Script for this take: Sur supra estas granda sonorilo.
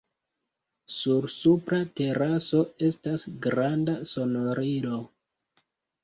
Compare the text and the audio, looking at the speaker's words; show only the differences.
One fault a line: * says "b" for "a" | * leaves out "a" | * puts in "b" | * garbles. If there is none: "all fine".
* puts in "teraso"